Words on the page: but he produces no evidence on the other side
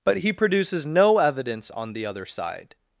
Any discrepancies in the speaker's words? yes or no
no